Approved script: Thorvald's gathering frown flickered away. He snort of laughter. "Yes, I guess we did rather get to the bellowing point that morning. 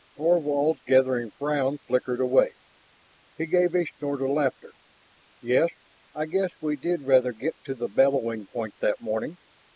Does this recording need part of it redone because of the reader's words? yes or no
yes